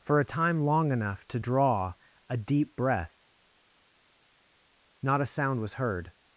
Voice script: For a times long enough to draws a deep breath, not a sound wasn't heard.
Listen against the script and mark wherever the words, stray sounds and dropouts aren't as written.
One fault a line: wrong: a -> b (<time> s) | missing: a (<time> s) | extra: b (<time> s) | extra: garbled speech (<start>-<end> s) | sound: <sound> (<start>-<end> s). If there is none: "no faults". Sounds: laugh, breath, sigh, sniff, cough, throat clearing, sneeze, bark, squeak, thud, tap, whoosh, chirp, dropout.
wrong: times -> time (0.2 s)
wrong: draws -> draw (1.4 s)
wrong: wasn't -> was (5.6 s)